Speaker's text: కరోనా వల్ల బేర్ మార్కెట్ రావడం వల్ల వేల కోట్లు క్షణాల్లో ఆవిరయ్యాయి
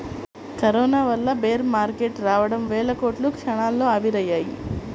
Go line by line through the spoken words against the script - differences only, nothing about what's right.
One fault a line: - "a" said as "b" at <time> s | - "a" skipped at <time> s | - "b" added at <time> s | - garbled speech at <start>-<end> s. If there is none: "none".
- "వల్ల" skipped at 2.6 s